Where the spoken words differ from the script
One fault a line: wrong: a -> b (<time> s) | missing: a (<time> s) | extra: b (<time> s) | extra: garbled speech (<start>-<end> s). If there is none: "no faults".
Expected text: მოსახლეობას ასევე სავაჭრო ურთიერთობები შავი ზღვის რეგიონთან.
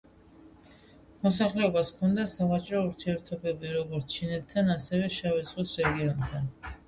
wrong: ასევე -> ჰქონდა (1.9 s)
extra: როგორც ჩინეთთან ასევე (3.8 s)